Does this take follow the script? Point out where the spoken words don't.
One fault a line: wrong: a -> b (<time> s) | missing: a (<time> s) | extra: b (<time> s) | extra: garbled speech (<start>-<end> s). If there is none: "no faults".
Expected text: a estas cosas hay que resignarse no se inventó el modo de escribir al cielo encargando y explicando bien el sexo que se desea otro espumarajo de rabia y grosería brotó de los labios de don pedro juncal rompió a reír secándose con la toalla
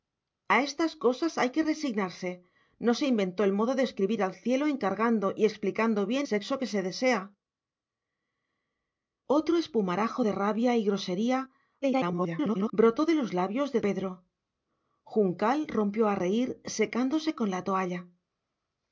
missing: el (6.3 s)
extra: garbled speech (11.8-12.7 s)
missing: don (13.8 s)